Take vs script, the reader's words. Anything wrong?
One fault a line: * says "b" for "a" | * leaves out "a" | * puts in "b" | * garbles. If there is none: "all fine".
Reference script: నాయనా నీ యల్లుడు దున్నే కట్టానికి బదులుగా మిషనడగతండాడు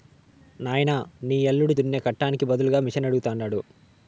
all fine